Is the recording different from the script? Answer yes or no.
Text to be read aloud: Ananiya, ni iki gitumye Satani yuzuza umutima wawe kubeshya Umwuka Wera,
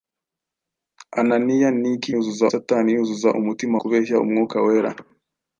yes